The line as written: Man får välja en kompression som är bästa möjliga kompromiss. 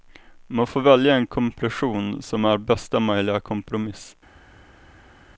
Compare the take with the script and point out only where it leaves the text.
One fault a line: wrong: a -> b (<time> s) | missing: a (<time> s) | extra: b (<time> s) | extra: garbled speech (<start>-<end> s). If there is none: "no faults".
no faults